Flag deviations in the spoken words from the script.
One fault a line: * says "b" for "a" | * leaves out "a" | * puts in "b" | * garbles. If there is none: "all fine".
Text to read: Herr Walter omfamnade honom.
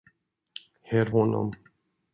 * leaves out "Walter omfamnade"